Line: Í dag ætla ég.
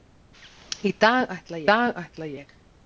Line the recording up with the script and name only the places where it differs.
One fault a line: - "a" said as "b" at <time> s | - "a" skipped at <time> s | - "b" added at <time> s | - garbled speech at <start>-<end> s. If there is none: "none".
- "dag ætla" added at 1.7 s